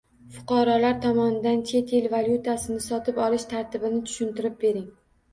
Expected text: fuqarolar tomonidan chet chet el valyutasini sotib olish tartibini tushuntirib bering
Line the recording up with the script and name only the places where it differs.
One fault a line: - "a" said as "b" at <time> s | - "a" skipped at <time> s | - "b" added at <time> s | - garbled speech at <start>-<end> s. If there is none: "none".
- "chet" skipped at 1.9 s